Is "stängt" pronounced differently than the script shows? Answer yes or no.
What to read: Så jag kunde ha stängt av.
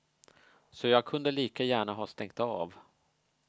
no